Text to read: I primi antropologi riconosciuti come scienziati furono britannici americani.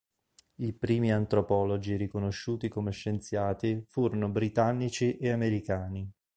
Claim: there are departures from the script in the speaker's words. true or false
true